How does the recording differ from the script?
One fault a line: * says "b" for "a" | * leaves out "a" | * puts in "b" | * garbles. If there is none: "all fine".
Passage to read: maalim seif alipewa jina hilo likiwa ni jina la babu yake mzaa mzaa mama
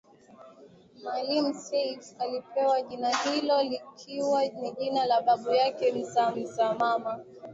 all fine